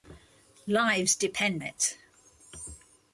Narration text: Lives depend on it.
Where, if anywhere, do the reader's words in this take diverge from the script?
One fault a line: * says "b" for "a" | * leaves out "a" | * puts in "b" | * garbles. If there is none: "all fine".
* leaves out "on"